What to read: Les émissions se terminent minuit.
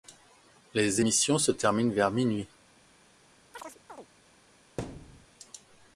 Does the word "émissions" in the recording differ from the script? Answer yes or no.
no